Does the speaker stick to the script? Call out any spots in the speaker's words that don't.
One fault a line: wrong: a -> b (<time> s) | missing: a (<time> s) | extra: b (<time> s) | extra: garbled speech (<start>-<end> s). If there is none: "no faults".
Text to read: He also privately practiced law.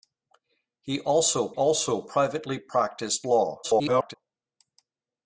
extra: also (1.5 s)
extra: garbled speech (3.6-4.1 s)